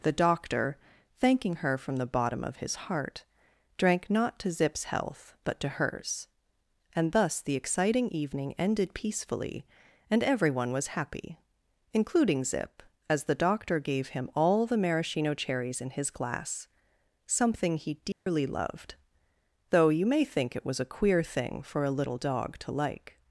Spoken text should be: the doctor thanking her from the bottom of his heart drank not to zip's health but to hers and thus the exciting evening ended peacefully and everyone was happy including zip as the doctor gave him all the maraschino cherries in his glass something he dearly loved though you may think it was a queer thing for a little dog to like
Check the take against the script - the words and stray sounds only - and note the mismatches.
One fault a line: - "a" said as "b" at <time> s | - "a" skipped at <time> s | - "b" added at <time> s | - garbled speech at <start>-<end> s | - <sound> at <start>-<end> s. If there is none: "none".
- dropout at 18.1-18.3 s